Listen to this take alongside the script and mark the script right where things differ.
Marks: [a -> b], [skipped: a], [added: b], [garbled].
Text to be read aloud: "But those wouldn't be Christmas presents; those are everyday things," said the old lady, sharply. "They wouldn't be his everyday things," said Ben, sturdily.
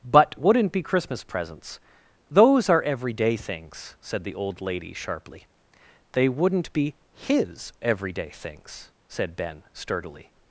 "But [skipped: those] wouldn't be Christmas presents; those are everyday things," said the old lady, sharply. "They wouldn't be his everyday things," said Ben, sturdily.